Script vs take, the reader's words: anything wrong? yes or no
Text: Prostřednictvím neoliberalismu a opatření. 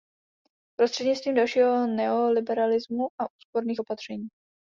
yes